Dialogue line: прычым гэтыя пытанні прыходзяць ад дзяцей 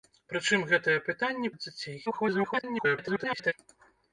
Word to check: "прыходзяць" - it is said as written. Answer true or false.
false